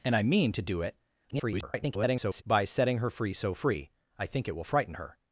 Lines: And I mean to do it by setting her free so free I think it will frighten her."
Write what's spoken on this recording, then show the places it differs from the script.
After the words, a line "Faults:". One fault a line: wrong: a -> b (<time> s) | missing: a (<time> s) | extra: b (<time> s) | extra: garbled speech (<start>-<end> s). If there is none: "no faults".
And I mean to do it [garbled] by setting her free so free I think it will frighten her."
Faults:
extra: garbled speech (1.3-2.4 s)